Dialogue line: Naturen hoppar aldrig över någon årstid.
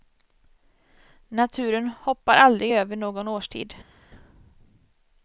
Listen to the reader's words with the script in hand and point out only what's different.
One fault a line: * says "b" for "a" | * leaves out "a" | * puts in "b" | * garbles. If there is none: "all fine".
all fine